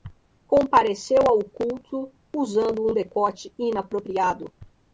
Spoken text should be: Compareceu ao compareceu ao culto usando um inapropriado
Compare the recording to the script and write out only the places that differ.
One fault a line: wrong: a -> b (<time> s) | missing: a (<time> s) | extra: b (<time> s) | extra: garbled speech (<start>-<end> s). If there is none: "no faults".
missing: compareceu ao (1.4 s)
extra: decote (2.9 s)